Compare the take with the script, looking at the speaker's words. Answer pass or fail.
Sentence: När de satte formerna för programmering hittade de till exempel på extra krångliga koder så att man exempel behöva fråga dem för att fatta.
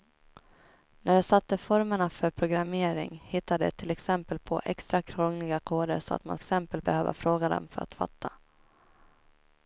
pass